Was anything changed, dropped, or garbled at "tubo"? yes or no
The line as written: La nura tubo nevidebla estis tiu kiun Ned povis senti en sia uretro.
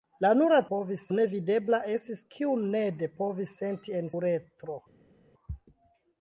yes